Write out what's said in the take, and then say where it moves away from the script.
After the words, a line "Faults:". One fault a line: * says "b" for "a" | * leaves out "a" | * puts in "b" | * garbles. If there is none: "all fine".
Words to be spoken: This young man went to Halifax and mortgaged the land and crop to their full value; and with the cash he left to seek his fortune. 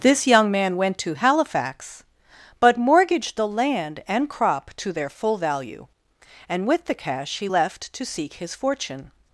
This young man went to Halifax but mortgaged the land and crop to their full value; and with the cash he left to seek his fortune.
Faults:
* says "but" for "and"